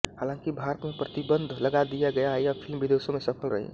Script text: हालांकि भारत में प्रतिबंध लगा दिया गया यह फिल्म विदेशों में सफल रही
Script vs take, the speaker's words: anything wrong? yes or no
no